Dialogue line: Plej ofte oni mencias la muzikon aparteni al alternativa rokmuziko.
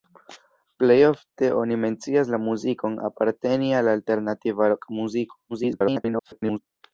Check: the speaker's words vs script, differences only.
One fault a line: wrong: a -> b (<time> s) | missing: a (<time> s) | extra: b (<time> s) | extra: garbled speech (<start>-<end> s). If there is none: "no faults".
extra: garbled speech (5.5-6.6 s)